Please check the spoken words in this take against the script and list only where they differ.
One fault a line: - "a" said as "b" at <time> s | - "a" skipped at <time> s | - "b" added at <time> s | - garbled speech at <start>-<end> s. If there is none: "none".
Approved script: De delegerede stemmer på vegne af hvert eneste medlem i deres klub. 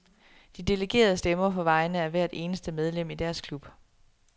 none